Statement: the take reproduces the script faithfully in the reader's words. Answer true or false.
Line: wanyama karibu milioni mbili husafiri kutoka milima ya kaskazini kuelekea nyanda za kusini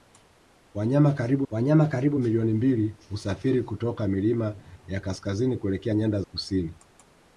false